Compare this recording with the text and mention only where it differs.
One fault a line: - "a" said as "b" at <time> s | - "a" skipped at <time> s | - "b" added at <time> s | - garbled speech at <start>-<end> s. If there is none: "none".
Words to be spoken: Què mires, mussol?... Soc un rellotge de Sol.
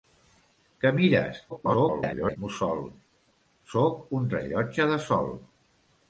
- garbled speech at 1.5-2.4 s